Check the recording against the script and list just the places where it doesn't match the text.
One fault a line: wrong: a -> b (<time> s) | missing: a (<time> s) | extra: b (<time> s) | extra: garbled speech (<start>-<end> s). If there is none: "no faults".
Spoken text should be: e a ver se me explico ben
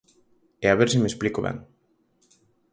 no faults